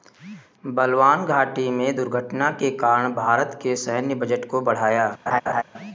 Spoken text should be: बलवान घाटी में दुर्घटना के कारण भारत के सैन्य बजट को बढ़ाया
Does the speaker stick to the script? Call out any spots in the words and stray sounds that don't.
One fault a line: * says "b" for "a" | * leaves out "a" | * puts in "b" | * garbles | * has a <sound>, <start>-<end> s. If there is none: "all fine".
* has a laugh, 5.3-5.6 s